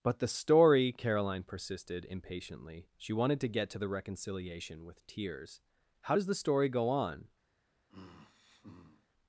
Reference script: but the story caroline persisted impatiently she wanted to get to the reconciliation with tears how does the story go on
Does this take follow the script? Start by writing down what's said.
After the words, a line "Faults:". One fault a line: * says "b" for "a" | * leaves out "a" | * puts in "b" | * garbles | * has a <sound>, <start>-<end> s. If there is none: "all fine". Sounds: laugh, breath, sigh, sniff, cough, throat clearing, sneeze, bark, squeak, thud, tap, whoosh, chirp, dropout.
but the story caroline persisted impatiently she wanted to get to the reconciliation with tears how does the story go on
Faults:
* has a sigh, 7.9-9.1 s